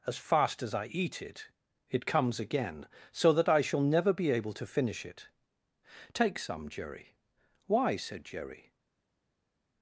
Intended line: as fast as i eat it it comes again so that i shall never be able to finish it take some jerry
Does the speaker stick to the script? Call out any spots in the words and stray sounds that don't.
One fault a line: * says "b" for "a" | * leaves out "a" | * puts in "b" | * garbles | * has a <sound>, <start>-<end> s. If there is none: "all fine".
* puts in "why said jerry"